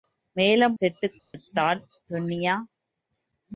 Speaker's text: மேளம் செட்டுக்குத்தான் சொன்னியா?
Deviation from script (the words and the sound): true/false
true